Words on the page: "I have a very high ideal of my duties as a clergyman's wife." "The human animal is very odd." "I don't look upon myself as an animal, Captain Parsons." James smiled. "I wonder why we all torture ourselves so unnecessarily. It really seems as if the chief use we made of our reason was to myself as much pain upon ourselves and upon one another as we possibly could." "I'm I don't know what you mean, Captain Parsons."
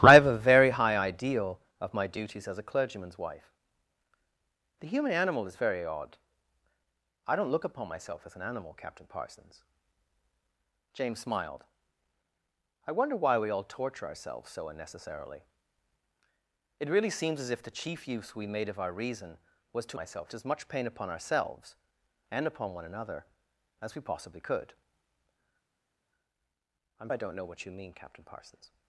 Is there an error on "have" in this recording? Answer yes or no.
no